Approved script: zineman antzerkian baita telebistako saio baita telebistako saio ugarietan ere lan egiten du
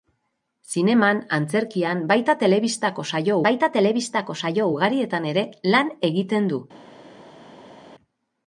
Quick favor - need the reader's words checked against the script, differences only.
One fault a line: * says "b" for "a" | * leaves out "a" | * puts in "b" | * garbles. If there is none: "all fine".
all fine